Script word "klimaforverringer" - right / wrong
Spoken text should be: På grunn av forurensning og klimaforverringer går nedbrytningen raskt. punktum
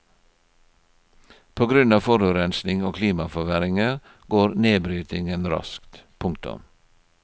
right